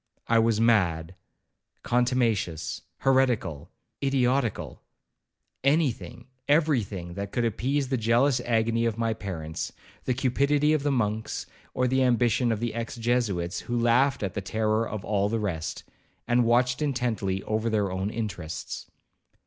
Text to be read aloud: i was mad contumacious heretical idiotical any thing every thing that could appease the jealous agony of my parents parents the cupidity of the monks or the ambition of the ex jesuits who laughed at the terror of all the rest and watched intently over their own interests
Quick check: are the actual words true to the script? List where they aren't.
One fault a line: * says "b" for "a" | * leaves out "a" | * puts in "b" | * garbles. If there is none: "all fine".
* leaves out "parents"